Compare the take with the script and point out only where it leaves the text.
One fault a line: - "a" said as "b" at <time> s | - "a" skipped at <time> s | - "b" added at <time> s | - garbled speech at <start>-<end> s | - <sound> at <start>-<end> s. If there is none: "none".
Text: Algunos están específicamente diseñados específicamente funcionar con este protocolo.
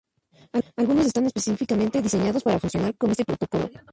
- "específicamente" said as "para" at 2.4 s